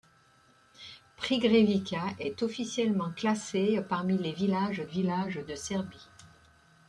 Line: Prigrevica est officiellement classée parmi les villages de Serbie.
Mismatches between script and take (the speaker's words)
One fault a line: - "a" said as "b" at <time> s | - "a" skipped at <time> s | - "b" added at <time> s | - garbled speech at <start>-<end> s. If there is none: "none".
- "villages" added at 4.8 s